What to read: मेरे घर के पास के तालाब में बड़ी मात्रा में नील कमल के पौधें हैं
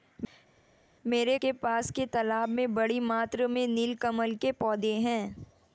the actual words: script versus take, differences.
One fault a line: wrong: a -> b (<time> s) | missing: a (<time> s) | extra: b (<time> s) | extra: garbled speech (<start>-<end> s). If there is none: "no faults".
missing: घर (1.4 s)